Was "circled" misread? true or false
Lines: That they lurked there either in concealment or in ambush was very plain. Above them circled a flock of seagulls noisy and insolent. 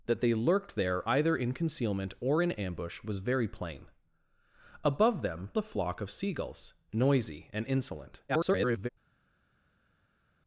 true